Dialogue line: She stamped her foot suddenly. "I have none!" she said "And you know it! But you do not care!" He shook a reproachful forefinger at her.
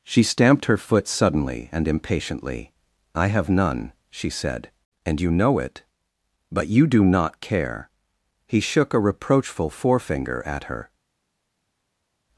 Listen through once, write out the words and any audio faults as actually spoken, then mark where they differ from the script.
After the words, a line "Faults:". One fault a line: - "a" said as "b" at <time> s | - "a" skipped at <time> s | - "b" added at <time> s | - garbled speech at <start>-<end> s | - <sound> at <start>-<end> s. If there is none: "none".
She stamped her foot suddenly and impatiently. "I have none!" she said "And you know it! But you do not care!" He shook a reproachful forefinger at her.
Faults:
- "and impatiently" added at 1.7 s